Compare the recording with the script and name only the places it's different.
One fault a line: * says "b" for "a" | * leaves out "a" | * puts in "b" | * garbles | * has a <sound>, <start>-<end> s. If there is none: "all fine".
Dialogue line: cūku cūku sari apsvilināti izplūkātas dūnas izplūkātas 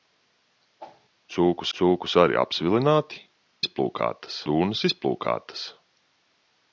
* has a whoosh, 0.8-1.1 s